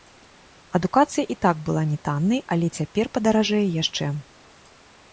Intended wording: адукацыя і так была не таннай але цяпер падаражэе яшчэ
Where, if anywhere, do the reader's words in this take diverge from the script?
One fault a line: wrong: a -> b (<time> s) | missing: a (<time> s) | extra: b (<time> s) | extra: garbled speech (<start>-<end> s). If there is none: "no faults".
no faults